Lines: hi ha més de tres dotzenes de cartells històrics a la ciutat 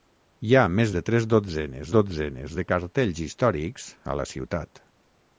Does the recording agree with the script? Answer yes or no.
no